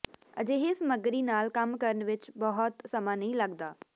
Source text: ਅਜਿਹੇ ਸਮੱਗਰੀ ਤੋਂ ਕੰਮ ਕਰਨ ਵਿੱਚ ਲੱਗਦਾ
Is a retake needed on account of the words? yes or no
yes